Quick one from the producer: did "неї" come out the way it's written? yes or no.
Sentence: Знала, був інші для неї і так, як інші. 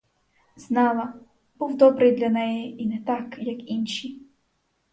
yes